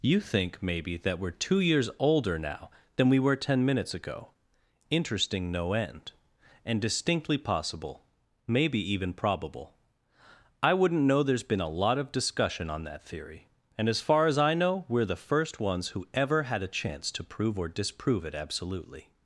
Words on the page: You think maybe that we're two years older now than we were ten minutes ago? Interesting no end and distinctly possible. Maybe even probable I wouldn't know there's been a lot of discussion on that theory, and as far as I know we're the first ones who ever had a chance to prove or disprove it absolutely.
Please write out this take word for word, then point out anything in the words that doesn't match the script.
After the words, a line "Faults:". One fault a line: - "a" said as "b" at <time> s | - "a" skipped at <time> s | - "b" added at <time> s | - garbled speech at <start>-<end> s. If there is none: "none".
You think maybe that we're two years older now than we were ten minutes ago? Interesting no end and distinctly possible. Maybe even probable I wouldn't know there's been a lot of discussion on that theory, and as far as I know we're the first ones who ever had a chance to prove or disprove it absolutely.
Faults:
none